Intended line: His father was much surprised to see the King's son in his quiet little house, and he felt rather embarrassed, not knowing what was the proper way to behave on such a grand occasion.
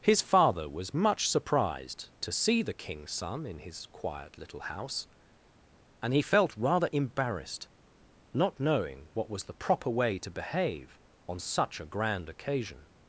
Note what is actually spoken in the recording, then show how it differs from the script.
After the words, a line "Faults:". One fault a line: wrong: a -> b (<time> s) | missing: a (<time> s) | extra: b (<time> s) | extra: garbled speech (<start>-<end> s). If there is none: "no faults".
His father was much surprised to see the King's son in his quiet little house, and he felt rather embarrassed, not knowing what was the proper way to behave on such a grand occasion.
Faults:
no faults